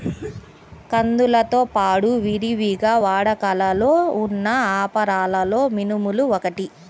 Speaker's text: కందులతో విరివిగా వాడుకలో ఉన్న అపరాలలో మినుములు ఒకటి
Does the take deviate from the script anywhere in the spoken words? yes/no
yes